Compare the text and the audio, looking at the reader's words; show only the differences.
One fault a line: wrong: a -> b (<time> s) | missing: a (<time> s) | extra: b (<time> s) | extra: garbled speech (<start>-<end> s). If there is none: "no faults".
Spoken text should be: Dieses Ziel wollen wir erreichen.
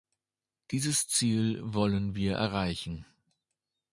no faults